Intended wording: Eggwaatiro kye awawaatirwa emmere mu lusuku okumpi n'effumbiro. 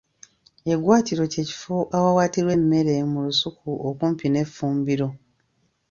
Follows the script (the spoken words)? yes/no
no